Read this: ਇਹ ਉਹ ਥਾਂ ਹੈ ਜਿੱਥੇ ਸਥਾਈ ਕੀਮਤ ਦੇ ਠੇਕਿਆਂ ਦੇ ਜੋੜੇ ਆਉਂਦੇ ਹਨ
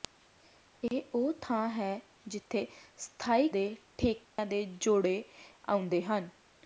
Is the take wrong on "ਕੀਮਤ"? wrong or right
wrong